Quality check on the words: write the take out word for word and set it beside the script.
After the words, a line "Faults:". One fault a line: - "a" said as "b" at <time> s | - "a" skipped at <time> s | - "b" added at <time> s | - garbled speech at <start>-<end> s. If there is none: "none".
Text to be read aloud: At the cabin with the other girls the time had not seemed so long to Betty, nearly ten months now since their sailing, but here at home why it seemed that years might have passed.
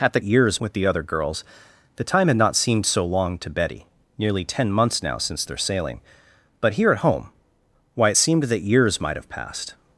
At the years with the other girls the time had not seemed so long to Betty, nearly ten months now since their sailing, but here at home why it seemed that years might have passed.
Faults:
- "cabin" said as "years" at 0.2 s